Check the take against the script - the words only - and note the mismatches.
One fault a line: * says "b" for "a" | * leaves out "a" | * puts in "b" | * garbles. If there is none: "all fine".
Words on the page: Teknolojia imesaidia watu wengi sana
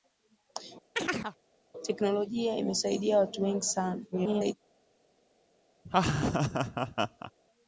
* garbles